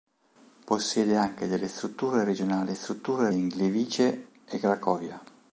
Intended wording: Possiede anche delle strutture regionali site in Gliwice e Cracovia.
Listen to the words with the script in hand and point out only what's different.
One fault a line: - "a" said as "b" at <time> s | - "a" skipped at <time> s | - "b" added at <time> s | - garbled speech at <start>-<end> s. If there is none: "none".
- "site" said as "strutture" at 2.7 s